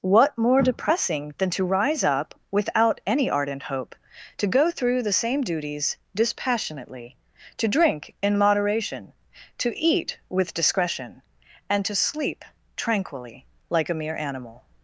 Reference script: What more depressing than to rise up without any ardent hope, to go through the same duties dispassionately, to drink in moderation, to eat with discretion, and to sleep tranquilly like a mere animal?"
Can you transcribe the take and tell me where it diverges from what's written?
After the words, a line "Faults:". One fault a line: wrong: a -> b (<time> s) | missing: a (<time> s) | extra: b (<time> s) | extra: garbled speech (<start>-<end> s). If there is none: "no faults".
What more depressing than to rise up without any ardent hope, to go through the same duties dispassionately, to drink in moderation, to eat with discretion, and to sleep tranquilly like a mere animal?"
Faults:
no faults